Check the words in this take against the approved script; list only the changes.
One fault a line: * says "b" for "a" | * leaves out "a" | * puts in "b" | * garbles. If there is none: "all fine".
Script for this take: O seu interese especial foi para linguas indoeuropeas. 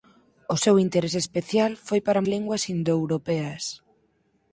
all fine